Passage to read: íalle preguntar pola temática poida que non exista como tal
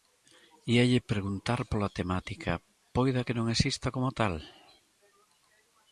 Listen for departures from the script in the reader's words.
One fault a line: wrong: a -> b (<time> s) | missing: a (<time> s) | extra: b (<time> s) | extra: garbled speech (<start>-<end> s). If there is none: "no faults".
no faults